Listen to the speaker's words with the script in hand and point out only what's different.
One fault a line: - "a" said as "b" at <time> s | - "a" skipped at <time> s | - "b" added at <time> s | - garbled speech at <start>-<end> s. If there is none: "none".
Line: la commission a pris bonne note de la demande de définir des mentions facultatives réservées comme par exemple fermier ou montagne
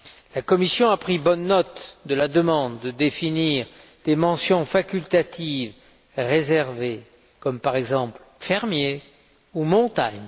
none